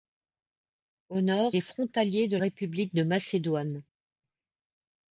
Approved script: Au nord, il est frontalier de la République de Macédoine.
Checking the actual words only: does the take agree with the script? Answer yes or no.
no